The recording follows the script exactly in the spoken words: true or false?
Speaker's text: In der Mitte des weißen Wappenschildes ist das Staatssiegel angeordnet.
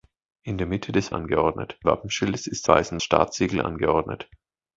false